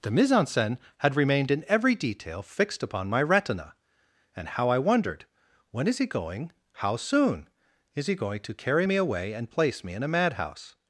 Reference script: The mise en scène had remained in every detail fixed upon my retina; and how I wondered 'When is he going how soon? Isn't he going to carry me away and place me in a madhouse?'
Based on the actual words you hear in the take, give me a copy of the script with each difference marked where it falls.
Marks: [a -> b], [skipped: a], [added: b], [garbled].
The mise en scène had remained in every detail fixed upon my retina; and how I wondered 'When is he going how soon? [Isn't -> Is] he going to carry me away and place me in a madhouse?'